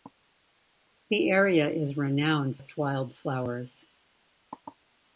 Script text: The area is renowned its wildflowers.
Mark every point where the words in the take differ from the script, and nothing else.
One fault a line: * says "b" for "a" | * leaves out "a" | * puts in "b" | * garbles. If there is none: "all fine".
all fine